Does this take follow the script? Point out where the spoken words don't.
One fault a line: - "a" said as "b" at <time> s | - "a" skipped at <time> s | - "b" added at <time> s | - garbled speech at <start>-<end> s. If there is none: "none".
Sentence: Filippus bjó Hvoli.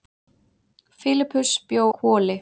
none